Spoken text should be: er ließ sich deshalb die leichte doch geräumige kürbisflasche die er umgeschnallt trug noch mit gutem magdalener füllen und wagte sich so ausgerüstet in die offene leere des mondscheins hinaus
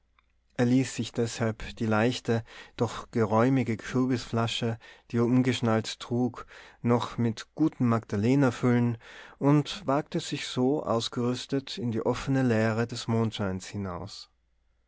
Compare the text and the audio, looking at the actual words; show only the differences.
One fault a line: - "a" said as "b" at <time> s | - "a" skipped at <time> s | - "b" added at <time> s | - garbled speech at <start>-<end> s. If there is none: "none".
none